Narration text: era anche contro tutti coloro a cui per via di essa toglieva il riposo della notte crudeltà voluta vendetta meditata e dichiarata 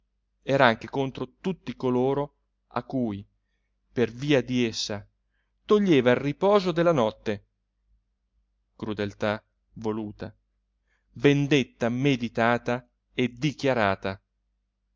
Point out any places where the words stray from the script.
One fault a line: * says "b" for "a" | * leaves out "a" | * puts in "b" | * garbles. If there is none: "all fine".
all fine